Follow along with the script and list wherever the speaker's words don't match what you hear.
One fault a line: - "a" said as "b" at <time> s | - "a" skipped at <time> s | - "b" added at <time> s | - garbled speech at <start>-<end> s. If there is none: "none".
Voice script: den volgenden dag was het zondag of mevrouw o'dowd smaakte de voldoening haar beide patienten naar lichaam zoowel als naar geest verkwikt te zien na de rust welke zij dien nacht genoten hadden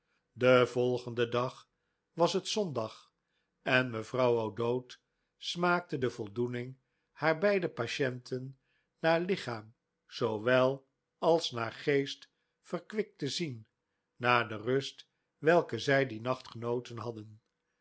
- "of" said as "en" at 3.6 s